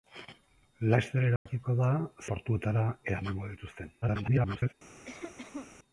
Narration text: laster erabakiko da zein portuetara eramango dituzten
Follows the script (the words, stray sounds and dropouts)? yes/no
no